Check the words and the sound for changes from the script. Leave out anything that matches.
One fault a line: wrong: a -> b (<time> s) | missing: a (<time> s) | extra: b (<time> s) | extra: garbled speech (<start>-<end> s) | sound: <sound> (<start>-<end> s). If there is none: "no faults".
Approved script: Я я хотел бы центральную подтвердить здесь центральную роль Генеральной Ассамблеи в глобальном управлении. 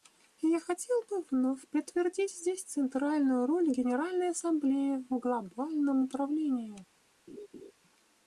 missing: я (0.6 s)
wrong: центральную -> вновь (1.3 s)
sound: laugh (7.3-7.7 s)